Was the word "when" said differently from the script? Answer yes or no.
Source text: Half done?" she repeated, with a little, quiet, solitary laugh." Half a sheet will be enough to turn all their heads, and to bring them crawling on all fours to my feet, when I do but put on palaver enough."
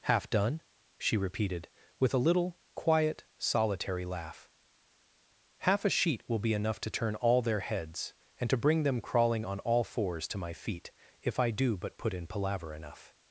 yes